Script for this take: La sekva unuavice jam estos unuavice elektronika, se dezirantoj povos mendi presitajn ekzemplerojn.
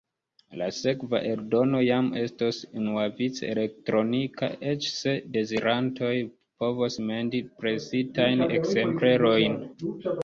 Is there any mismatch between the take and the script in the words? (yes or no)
yes